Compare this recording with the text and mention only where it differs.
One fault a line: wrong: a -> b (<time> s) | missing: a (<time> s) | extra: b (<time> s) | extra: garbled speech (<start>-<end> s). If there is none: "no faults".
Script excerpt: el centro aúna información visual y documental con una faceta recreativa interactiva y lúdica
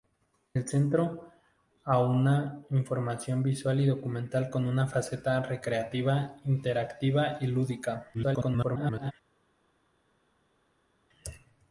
extra: garbled speech (8.1-9.1 s)